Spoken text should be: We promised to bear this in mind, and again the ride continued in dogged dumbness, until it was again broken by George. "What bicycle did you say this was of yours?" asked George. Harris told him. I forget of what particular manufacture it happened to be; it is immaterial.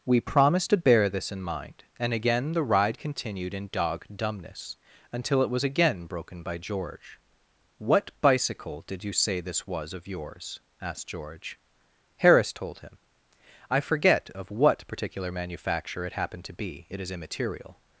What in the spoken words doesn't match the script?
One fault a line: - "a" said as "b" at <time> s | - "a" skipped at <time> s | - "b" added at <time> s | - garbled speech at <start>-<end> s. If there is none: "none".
- "dogged" said as "dog" at 3.7 s